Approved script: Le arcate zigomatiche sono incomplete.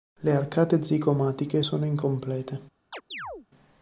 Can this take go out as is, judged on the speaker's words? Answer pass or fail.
pass